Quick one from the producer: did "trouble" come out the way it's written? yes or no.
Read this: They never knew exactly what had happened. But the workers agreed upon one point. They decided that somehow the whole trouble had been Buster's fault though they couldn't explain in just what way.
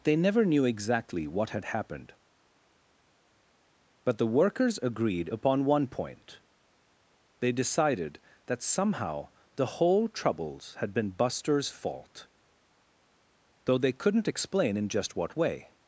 no